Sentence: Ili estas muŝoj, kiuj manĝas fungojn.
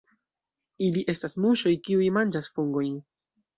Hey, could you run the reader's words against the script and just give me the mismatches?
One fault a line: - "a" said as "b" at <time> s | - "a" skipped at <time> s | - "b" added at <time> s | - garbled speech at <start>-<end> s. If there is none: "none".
none